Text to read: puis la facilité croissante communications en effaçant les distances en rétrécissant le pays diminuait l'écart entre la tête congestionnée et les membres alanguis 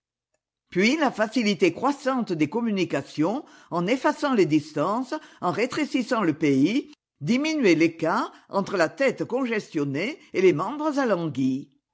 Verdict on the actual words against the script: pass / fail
fail